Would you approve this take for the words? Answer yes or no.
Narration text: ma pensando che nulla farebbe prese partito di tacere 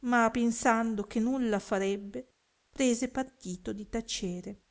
yes